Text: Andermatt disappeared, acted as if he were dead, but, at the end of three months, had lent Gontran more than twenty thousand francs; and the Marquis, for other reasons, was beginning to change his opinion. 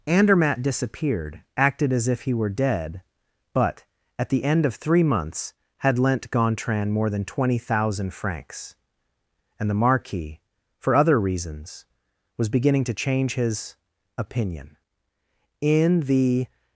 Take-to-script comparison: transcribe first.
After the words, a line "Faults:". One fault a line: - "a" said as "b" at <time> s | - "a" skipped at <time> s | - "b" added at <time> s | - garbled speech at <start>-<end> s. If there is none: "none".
Andermatt disappeared, acted as if he were dead, but, at the end of three months, had lent Gontran more than twenty thousand francs; and the Marquis, for other reasons, was beginning to change his opinion. In the
Faults:
- "In the" added at 15.6 s